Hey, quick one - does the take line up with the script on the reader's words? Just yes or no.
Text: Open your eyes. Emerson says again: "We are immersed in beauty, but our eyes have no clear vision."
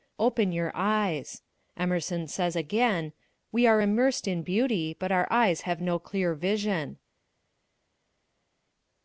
yes